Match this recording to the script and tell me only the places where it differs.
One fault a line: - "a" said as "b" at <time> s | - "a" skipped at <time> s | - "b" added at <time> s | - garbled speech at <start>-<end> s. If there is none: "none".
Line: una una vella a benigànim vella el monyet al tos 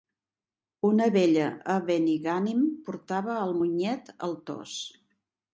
- "una" skipped at 1.1 s
- "vella" said as "portava" at 2.9 s